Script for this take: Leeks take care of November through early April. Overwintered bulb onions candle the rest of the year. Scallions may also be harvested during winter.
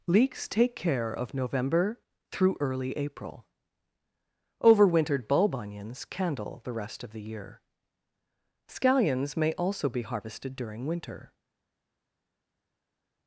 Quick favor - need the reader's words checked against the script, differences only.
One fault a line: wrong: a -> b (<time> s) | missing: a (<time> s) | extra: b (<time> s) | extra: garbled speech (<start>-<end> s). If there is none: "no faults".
no faults